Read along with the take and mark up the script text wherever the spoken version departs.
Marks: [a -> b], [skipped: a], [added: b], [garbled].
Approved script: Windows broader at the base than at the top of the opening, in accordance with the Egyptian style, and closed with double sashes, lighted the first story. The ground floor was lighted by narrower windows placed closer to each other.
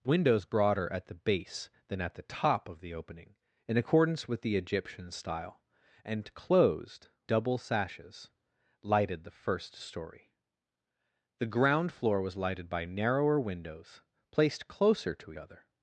Windows broader at the base than at the top of the opening, in accordance with the Egyptian style, and closed [skipped: with] double sashes, lighted the first story. The ground floor was lighted by narrower windows placed closer to [skipped: each] other.